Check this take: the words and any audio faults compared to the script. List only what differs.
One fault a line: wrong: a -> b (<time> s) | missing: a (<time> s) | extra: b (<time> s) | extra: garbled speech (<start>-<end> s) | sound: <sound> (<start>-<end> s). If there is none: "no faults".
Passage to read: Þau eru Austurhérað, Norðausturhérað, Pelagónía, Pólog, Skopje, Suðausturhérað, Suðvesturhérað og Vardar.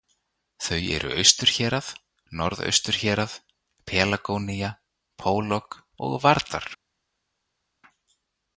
missing: Skopje Suðausturhérað Suðvesturhérað (5.8 s)